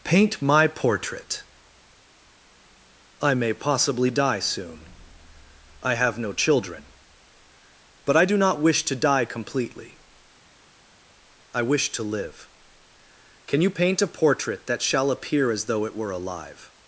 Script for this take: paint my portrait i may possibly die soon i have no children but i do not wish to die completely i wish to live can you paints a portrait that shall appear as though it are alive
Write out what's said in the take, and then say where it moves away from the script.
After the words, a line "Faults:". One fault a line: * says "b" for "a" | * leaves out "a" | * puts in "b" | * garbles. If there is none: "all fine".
paint my portrait i may possibly die soon i have no children but i do not wish to die completely i wish to live can you paint a portrait that shall appear as though it were alive
Faults:
* says "paint" for "paints"
* says "were" for "are"